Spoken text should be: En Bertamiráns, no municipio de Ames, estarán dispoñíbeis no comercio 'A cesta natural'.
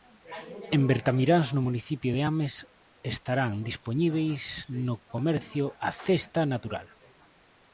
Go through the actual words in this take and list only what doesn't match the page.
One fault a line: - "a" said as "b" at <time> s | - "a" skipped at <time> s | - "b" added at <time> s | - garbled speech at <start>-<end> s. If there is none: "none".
none